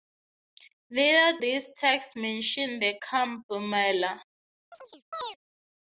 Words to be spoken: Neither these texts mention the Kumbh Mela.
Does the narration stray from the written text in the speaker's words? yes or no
no